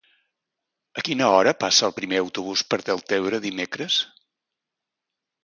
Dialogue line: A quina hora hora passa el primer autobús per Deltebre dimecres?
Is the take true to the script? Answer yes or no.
no